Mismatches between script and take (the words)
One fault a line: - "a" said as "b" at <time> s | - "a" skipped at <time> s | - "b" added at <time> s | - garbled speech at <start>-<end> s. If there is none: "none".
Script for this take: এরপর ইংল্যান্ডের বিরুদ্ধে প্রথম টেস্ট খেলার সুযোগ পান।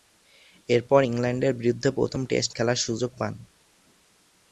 none